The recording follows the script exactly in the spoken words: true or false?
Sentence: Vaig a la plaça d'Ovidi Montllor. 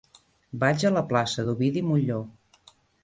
true